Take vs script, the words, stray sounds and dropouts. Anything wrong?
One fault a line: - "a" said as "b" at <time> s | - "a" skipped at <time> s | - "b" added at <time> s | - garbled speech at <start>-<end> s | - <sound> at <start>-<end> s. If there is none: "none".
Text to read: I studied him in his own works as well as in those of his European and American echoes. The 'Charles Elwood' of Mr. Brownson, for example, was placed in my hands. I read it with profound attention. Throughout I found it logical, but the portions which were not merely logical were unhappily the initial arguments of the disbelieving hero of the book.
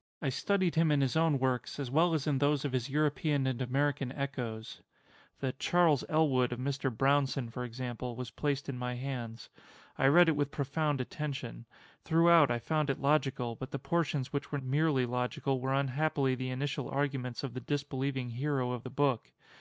- "not" skipped at 14.6 s